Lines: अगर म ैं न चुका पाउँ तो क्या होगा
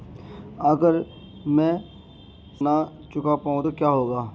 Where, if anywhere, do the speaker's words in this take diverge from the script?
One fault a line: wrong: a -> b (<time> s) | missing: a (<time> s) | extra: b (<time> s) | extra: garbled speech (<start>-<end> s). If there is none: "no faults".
no faults